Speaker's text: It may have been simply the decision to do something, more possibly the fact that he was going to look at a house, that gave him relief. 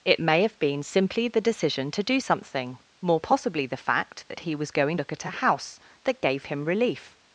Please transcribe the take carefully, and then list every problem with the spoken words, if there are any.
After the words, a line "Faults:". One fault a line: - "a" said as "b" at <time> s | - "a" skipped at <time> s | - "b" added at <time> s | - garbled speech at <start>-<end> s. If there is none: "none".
It may have been simply the decision to do something, more possibly the fact that he was going look at a house, that gave him relief.
Faults:
- "to" skipped at 5.0 s